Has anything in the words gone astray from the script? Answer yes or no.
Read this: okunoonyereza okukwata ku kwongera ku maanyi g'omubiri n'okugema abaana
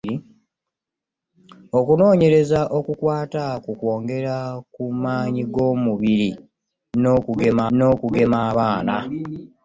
yes